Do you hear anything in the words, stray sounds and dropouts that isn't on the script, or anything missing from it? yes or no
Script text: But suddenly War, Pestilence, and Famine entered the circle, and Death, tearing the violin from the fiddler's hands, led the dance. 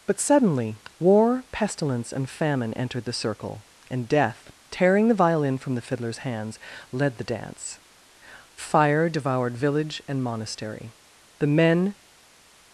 yes